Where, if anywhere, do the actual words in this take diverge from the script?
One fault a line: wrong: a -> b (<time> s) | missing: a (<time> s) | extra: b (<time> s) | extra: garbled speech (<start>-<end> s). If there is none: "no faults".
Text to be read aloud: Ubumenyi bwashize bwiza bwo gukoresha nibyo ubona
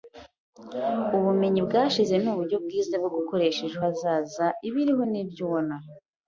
extra: nuburyo (2.2 s)
extra: ejo hazaza Ibiriho (3.7 s)